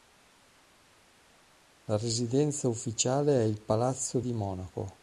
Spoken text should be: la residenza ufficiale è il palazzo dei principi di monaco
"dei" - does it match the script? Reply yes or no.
no